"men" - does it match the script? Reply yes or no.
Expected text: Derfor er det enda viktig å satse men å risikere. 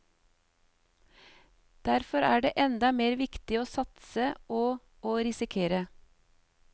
no